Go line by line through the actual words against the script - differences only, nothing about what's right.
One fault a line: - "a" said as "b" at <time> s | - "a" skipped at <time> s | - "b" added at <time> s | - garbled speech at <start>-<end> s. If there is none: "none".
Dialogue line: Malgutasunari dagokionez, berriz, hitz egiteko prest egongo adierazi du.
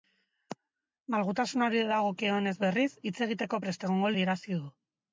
none